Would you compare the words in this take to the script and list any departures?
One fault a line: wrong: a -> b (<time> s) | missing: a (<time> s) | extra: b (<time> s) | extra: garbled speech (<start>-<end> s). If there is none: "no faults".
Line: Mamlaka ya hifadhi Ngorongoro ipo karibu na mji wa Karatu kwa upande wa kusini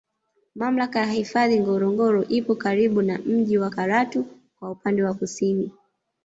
no faults